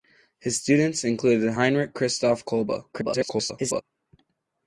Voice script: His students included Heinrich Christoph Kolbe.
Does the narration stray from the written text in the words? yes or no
yes